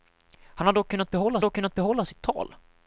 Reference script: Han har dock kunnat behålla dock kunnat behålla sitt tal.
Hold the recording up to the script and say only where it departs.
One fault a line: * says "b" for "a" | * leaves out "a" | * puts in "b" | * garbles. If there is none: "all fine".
all fine